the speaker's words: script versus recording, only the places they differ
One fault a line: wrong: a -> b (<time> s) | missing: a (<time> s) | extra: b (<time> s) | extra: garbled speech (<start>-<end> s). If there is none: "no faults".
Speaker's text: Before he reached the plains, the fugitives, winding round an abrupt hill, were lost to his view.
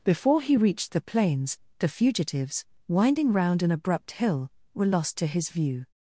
no faults